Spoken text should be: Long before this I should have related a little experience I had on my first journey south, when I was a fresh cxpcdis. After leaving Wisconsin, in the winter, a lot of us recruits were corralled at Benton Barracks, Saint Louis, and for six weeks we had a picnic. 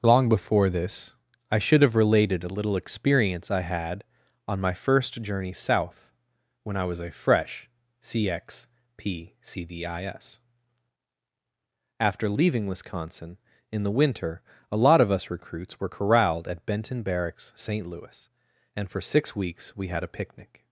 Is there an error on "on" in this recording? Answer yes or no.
no